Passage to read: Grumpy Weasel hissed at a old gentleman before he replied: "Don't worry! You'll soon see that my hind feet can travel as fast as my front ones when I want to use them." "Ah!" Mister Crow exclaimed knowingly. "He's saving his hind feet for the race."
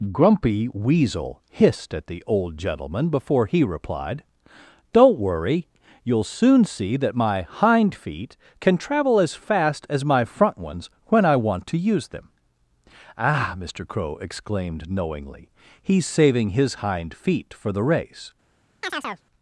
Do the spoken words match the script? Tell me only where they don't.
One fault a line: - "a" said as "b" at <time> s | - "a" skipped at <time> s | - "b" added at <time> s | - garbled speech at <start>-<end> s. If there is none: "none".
- "a" said as "the" at 2.1 s